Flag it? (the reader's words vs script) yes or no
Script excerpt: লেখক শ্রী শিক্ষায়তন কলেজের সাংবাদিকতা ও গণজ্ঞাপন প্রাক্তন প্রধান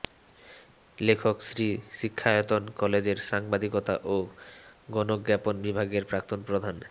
yes